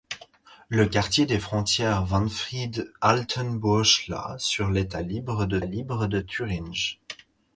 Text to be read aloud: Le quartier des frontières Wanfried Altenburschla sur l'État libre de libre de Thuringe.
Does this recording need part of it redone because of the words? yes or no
no